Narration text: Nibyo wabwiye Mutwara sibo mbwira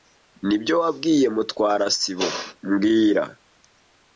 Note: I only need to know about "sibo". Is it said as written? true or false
true